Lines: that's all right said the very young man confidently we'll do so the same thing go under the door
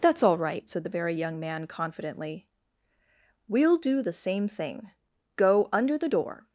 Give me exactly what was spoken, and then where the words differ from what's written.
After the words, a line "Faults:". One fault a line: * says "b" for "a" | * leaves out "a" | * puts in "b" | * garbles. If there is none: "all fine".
that's all right said the very young man confidently we'll do the same thing go under the door
Faults:
* leaves out "so"